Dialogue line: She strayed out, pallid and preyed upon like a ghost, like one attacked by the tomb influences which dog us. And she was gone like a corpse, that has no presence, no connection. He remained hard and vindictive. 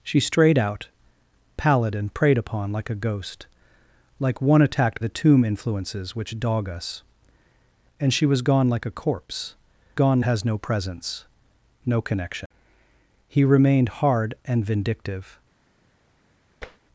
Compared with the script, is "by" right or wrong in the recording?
wrong